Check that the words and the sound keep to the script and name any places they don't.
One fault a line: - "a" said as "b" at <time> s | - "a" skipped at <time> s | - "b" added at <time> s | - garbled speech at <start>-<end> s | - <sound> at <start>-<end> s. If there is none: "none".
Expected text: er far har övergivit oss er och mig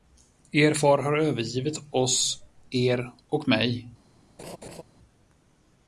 - laugh at 4.4-4.8 s